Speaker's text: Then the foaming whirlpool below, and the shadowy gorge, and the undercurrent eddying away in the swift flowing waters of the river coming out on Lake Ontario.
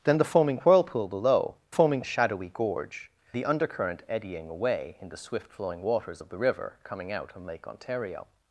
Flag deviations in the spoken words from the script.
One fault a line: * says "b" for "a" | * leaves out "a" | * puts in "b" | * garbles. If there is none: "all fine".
* says "foaming" for "and"
* leaves out "and"